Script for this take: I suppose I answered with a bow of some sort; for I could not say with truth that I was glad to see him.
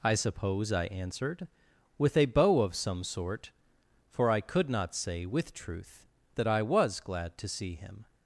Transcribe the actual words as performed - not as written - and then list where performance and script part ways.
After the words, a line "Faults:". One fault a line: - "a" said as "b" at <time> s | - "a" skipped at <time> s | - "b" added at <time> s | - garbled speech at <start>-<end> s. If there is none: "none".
I suppose I answered with a bow of some sort; for I could not say with truth that I was glad to see him.
Faults:
none